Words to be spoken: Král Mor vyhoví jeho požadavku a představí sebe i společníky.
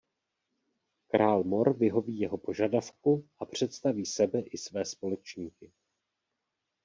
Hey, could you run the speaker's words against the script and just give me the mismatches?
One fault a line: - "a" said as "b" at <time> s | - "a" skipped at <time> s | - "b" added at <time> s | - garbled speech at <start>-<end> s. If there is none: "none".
- "své" added at 4.6 s